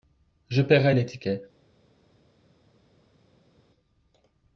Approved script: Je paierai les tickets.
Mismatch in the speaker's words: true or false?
false